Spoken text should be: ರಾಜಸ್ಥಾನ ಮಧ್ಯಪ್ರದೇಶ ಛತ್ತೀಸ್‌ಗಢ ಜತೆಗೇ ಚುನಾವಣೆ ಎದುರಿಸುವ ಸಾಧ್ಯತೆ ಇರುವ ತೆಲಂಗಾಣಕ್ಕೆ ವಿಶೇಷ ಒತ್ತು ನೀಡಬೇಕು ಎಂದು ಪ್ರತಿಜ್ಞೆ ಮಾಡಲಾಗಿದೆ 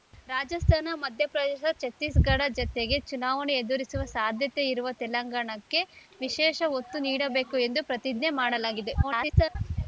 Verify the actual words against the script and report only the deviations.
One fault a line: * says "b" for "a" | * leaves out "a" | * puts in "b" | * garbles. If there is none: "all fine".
* garbles